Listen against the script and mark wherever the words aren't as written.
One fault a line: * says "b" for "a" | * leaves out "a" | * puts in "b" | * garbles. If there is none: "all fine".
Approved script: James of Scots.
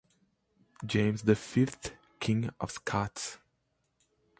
* puts in "the Fifth King"